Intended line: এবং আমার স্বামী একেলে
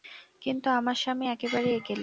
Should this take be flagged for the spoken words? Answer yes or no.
yes